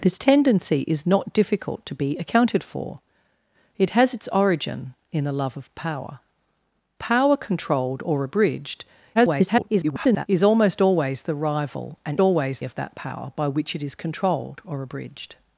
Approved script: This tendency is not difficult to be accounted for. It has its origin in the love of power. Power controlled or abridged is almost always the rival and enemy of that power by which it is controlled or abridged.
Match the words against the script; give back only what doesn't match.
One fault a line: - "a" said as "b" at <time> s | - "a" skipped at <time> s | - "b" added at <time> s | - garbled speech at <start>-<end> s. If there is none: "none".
- garbled speech at 9.1-10.3 s
- "enemy" said as "always" at 12.2 s